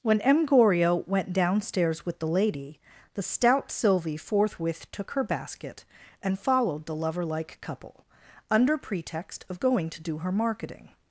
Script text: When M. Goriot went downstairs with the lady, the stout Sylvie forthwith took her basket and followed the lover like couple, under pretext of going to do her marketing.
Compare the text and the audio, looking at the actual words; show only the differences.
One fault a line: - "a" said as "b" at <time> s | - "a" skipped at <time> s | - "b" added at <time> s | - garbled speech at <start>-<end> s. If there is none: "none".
none